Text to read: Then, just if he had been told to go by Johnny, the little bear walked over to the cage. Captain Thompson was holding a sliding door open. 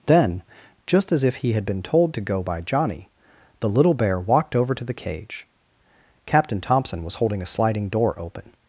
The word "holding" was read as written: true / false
true